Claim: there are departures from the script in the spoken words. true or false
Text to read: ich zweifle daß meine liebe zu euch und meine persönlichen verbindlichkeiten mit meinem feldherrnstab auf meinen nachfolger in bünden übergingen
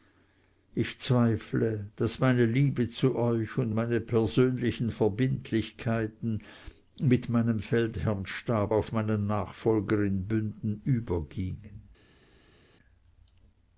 false